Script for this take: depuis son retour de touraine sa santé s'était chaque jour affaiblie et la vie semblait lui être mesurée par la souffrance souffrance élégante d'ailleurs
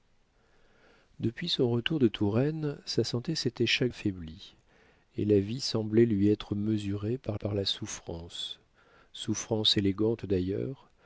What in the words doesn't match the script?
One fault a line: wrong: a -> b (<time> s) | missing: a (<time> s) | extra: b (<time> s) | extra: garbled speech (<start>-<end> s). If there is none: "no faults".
missing: jour (3.9 s)
extra: par (7.3 s)